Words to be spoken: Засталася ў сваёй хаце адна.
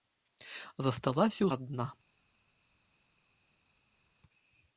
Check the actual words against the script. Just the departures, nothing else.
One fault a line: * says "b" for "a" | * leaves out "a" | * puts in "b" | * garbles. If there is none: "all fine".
* leaves out "сваёй хаце"